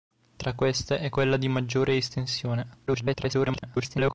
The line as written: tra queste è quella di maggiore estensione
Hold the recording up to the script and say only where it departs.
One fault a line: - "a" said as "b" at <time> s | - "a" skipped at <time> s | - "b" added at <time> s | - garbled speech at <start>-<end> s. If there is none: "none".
- garbled speech at 2.9-4.1 s